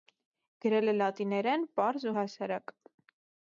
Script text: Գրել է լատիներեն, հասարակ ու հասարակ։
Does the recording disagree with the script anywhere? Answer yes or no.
yes